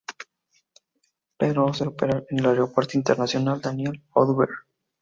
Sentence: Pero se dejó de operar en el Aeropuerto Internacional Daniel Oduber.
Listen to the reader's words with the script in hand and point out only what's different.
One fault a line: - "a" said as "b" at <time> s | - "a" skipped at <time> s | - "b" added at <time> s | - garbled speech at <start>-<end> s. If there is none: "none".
- "dejó" skipped at 1.9 s